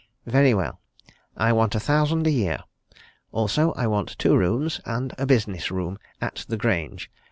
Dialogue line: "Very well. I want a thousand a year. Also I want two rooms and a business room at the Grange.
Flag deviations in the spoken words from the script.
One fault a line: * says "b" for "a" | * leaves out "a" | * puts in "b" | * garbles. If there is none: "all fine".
all fine